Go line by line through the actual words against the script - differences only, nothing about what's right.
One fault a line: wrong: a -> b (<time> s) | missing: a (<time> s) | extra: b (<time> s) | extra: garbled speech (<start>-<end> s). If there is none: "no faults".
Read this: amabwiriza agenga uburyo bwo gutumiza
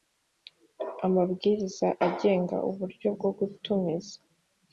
no faults